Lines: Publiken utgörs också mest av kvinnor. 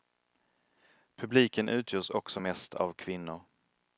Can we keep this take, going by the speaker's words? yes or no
yes